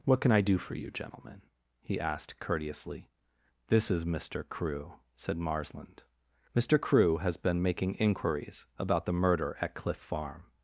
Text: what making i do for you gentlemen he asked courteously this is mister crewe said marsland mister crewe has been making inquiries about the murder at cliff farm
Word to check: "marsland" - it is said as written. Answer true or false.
true